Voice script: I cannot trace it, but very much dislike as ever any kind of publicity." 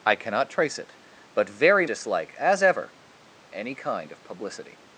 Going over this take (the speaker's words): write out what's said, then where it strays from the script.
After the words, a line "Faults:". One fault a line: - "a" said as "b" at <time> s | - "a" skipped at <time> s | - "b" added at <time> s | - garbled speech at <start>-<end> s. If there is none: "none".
I cannot trace it, but very dislike as ever any kind of publicity."
Faults:
- "much" skipped at 1.9 s